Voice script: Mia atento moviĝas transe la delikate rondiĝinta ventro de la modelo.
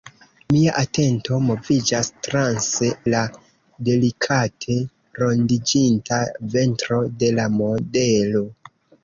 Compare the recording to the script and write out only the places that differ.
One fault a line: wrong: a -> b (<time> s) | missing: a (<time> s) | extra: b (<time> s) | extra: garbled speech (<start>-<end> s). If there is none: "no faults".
no faults